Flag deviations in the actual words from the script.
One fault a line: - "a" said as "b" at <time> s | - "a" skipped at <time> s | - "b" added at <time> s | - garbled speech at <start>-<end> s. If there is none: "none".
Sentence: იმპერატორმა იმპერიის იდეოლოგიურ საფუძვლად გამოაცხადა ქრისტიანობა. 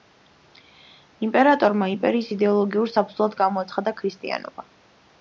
none